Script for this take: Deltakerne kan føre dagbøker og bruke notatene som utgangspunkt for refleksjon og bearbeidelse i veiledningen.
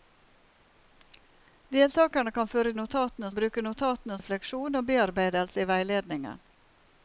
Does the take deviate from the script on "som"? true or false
true